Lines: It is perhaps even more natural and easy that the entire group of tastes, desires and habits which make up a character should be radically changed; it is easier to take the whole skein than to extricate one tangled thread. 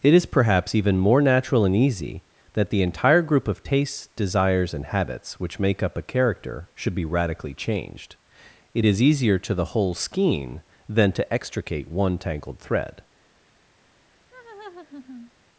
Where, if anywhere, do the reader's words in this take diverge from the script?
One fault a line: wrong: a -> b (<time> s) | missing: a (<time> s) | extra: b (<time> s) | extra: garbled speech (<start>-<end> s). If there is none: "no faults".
missing: take (9.5 s)